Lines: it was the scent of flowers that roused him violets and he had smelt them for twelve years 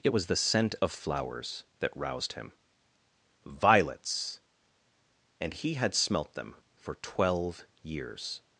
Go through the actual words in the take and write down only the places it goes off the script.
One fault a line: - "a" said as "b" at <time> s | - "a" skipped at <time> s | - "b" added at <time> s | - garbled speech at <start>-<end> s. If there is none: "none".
none